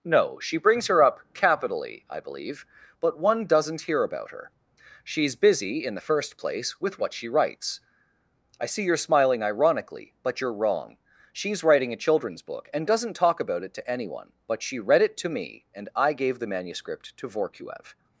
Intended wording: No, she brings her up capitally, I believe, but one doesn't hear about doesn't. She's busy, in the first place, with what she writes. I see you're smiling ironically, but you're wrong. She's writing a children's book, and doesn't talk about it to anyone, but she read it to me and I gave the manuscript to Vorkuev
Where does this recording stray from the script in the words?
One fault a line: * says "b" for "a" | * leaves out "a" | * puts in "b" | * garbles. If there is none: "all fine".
* says "her" for "doesn't"